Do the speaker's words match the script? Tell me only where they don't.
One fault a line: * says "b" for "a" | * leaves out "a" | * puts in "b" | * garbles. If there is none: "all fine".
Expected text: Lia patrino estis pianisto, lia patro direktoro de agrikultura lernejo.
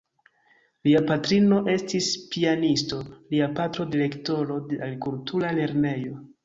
all fine